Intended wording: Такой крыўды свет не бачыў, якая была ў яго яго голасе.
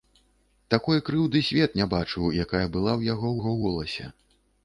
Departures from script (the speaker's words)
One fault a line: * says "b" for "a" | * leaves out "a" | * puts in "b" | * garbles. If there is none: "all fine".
all fine